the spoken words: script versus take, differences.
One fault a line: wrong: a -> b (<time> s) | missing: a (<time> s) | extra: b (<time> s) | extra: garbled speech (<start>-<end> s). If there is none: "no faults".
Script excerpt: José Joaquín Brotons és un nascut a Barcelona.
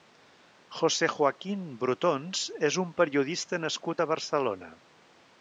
extra: periodista (3.0 s)